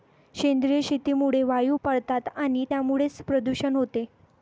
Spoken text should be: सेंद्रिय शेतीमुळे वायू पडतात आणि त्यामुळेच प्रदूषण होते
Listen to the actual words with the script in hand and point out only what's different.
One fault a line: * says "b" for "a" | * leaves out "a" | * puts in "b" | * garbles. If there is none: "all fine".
all fine